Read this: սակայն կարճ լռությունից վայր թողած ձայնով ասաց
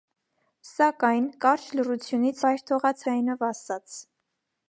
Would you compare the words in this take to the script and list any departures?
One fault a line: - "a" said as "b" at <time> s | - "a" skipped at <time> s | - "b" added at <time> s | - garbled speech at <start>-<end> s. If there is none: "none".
none